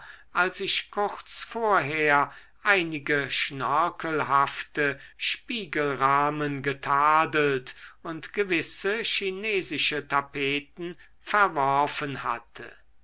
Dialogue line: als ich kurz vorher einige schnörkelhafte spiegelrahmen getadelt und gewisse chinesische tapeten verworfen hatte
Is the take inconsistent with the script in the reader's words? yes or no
no